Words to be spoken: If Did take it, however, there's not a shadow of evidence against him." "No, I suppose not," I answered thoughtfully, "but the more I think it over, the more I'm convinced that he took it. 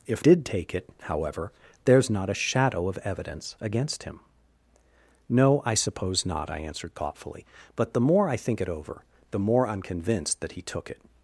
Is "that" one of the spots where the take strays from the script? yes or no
no